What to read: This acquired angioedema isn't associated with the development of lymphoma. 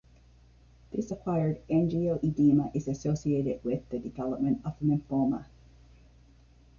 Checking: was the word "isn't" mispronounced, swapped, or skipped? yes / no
yes